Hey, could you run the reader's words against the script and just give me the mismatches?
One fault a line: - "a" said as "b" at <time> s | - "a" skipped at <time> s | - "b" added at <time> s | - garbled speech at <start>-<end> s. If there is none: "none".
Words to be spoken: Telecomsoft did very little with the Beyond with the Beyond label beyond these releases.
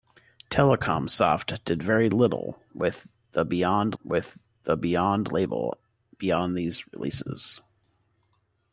none